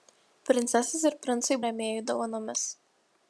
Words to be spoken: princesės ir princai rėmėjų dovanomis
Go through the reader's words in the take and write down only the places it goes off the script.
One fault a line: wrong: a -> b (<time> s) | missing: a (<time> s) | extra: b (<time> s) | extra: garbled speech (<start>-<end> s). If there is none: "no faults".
no faults